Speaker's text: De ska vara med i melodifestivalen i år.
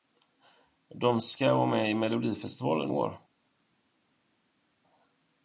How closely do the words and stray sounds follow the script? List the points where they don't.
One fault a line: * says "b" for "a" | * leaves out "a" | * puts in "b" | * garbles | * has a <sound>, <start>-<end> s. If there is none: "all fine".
* leaves out "i"